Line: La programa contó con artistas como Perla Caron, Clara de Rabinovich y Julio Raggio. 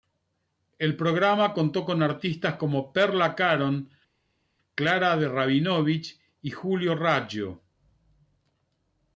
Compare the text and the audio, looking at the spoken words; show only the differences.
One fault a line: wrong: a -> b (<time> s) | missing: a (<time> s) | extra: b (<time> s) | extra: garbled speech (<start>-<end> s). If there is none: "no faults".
wrong: La -> El (0.8 s)